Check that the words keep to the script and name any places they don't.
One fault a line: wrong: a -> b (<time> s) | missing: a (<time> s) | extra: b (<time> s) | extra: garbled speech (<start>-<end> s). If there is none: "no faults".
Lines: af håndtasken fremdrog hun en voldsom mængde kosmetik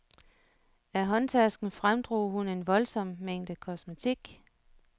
no faults